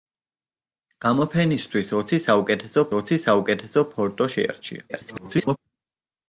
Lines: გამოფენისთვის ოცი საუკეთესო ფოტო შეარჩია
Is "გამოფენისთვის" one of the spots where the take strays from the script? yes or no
no